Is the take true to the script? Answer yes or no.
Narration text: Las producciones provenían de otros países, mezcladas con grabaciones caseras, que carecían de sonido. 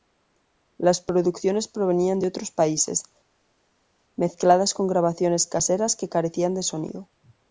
yes